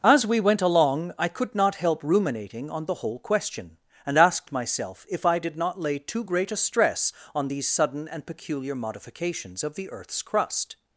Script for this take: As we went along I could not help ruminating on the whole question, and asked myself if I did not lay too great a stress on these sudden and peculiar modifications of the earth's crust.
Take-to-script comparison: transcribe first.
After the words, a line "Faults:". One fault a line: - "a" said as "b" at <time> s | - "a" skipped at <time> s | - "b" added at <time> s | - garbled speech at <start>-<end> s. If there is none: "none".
As we went along I could not help ruminating on the whole question, and asked myself if I did not lay too great a stress on these sudden and peculiar modifications of the earth's crust.
Faults:
none